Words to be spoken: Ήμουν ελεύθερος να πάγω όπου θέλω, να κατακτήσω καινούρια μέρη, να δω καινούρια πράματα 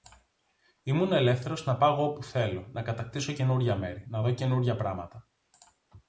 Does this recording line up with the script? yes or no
yes